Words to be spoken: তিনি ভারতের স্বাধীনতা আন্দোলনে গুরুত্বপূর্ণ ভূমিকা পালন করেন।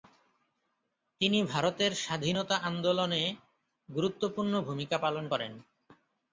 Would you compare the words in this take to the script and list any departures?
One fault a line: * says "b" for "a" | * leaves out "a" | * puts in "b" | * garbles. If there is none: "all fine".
all fine